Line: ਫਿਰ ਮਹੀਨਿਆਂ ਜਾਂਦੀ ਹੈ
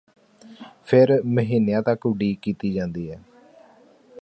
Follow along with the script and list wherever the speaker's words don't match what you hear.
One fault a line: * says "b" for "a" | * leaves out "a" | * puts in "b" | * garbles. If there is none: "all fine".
* puts in "ਤੱਕ ਉਡੀਕ ਕੀਤੀ"